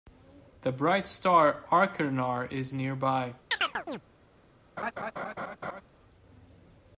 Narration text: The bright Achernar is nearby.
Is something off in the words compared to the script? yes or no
yes